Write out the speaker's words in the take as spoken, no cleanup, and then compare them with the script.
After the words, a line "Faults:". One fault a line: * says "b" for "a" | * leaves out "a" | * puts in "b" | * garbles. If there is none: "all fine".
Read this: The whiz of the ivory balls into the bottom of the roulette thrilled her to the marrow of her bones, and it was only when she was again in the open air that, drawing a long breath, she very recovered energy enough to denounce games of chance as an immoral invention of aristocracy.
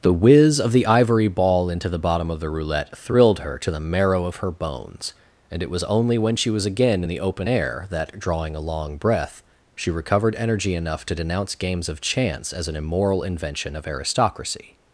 The whiz of the ivory ball into the bottom of the roulette thrilled her to the marrow of her bones, and it was only when she was again in the open air that, drawing a long breath, she recovered energy enough to denounce games of chance as an immoral invention of aristocracy.
Faults:
* says "ball" for "balls"
* leaves out "very"